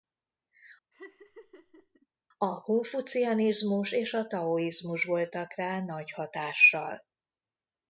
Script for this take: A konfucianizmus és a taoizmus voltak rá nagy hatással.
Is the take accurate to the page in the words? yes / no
yes